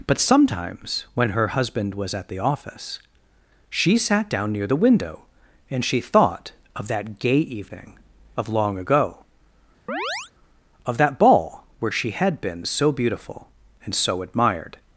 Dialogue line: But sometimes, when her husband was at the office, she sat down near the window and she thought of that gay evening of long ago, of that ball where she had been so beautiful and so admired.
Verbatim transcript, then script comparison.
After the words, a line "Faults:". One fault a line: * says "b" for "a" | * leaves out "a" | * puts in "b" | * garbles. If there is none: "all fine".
But sometimes, when her husband was at the office, she sat down near the window and she thought of that gay evening of long ago, of that ball where she had been so beautiful and so admired.
Faults:
all fine